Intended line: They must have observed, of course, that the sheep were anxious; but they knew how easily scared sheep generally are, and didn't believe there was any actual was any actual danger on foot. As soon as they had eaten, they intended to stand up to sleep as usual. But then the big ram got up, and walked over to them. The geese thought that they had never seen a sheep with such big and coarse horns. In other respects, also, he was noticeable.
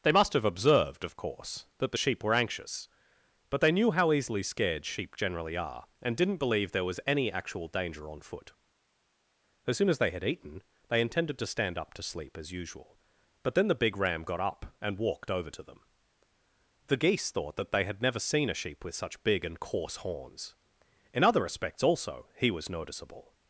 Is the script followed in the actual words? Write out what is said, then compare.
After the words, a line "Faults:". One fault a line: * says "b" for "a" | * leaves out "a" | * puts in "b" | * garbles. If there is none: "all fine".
They must have observed, of course, that the sheep were anxious; but they knew how easily scared sheep generally are, and didn't believe there was any actual danger on foot. As soon as they had eaten, they intended to stand up to sleep as usual. But then the big ram got up, and walked over to them. The geese thought that they had never seen a sheep with such big and coarse horns. In other respects, also, he was noticeable.
Faults:
* leaves out "was any actual"